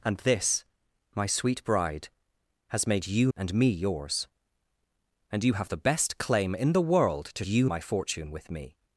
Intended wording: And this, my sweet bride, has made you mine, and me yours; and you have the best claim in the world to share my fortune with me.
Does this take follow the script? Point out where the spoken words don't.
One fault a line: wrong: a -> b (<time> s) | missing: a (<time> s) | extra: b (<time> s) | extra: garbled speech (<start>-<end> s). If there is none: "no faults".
missing: mine (3.3 s)
wrong: share -> you (7.4 s)